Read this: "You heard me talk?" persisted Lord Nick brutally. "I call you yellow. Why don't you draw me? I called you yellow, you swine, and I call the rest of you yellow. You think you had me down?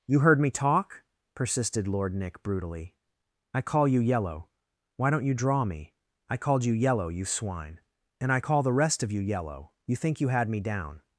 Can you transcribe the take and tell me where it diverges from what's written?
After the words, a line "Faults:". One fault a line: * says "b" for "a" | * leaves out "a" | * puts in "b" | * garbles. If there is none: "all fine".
"You heard me talk?" persisted Lord Nick brutally. "I call you yellow. Why don't you draw me? I called you yellow, you swine, and I call the rest of you yellow. You think you had me down?
Faults:
all fine